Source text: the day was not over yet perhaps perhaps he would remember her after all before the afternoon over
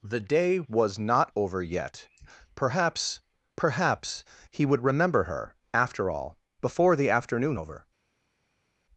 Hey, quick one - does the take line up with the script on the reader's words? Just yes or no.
yes